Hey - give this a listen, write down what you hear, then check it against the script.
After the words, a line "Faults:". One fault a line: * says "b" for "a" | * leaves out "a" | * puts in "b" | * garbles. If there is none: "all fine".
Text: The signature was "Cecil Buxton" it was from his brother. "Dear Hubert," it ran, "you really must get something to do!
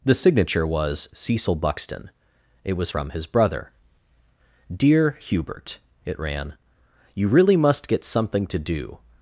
The signature was "Cecil Buxton" it was from his brother. "Dear Hubert," it ran, "you really must get something to do!
Faults:
all fine